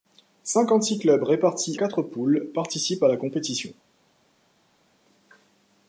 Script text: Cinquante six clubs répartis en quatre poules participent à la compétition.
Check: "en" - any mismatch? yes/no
yes